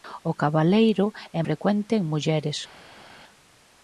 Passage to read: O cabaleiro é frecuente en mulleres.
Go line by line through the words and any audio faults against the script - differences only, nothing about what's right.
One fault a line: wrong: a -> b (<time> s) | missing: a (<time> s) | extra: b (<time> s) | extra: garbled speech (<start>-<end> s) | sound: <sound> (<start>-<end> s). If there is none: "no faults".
no faults